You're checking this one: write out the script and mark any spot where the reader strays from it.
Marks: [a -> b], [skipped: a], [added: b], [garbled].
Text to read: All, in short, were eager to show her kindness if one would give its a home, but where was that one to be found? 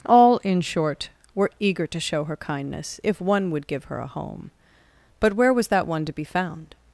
All, in short, were eager to show her kindness if one would give [its -> her] a home, but where was that one to be found?